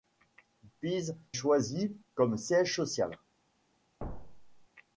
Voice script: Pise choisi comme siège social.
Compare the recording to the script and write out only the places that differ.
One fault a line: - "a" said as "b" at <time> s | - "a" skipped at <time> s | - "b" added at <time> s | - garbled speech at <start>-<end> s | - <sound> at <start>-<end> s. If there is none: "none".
- thud at 4.0-4.7 s